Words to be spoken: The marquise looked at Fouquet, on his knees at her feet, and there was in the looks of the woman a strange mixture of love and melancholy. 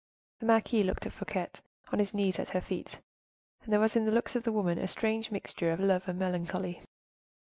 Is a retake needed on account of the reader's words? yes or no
no